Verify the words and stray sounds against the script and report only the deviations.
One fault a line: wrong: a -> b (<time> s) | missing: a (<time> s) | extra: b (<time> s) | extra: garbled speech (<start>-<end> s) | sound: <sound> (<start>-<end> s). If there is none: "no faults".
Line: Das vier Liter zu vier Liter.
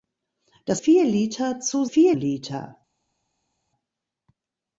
no faults